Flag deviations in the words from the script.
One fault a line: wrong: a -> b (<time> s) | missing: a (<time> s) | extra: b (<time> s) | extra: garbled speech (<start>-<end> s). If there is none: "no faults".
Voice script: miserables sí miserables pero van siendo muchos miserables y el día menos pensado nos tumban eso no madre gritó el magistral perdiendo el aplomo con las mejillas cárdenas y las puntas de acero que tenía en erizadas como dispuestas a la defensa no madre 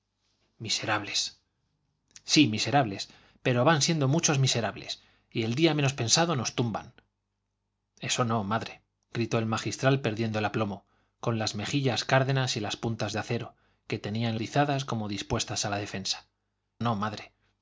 no faults